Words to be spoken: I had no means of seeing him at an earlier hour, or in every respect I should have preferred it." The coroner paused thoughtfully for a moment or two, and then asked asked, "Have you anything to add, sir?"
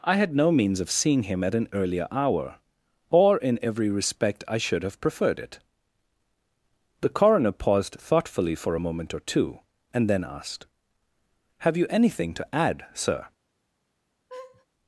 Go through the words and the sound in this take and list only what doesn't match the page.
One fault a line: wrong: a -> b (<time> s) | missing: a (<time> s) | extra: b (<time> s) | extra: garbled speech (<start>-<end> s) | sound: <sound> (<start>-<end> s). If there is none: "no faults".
missing: asked (10.7 s)
sound: laugh (14.3-14.7 s)